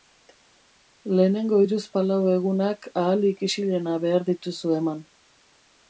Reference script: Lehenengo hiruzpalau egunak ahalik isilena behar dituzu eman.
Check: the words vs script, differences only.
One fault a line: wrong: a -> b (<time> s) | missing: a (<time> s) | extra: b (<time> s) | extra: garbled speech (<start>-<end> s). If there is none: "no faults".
no faults